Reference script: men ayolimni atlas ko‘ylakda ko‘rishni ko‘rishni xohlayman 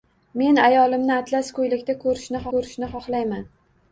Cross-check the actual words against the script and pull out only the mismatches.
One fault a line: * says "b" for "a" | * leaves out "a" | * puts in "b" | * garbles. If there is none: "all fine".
all fine